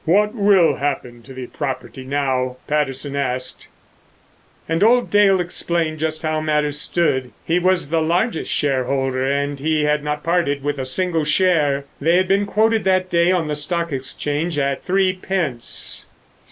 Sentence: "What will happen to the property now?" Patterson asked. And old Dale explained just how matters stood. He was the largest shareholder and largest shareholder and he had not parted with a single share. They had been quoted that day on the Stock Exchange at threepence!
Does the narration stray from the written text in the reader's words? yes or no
yes